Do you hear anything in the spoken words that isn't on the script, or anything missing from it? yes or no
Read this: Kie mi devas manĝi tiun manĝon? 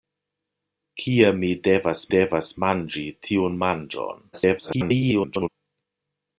yes